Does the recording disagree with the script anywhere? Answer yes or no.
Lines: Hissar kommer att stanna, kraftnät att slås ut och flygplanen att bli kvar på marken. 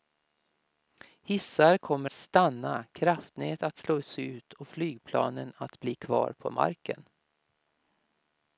yes